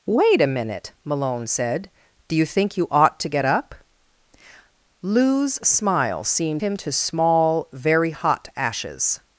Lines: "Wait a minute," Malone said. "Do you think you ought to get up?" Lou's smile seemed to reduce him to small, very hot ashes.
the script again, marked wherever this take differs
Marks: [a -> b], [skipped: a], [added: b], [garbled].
"Wait a minute," Malone said. "Do you think you ought to get up?" Lou's smile seemed [skipped: to reduce] him to small, very hot ashes.